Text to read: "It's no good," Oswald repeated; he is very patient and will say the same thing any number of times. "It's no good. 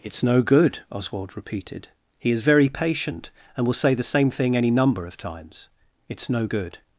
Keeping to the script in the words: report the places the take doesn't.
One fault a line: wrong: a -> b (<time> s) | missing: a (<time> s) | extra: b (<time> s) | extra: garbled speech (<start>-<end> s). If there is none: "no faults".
no faults